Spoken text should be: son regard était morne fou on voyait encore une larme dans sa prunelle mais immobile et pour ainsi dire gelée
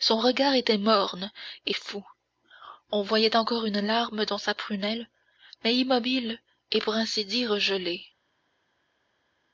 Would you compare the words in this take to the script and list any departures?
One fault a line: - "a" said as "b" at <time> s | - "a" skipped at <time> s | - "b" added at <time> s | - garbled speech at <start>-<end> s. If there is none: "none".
- "et" added at 1.6 s